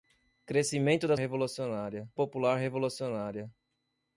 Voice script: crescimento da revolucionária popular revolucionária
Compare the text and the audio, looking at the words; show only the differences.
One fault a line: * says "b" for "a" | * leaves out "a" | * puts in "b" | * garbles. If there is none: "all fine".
all fine